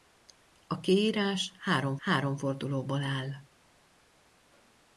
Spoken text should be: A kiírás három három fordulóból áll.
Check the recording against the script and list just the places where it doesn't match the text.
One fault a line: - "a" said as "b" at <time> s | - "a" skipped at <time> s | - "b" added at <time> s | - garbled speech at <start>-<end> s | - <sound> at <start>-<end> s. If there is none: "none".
none